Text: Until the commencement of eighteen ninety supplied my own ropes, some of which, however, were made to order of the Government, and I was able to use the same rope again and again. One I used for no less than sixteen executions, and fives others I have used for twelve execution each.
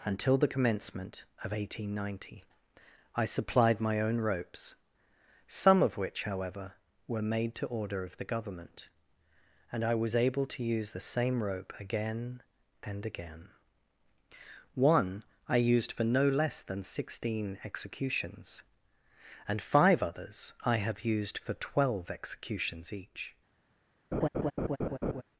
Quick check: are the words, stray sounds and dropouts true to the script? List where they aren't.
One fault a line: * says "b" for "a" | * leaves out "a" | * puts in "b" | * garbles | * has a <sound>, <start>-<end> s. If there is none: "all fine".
* puts in "I"
* says "five" for "fives"
* says "executions" for "execution"
* has a laugh, 24.1-25.2 s